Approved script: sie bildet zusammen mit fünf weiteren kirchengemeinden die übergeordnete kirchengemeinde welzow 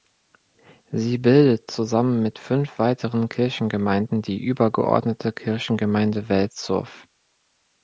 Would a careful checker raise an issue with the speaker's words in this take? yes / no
no